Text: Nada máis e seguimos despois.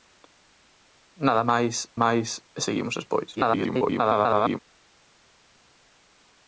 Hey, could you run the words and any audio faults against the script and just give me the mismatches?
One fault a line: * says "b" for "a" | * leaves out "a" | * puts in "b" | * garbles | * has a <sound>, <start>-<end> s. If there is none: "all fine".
* puts in "máis"
* garbles